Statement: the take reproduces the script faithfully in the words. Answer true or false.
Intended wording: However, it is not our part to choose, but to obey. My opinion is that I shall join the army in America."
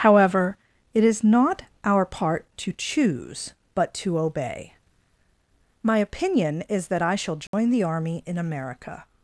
true